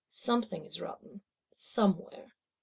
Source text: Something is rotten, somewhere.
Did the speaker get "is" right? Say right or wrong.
right